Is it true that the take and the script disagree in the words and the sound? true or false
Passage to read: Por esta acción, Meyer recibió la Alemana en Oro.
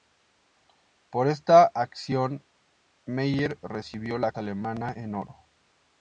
false